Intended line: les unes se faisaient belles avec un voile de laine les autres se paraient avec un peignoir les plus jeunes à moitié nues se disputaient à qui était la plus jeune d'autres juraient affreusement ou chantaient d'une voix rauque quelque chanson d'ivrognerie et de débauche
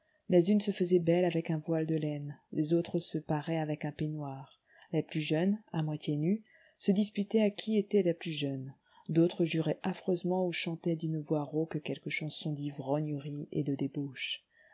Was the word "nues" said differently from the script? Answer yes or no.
no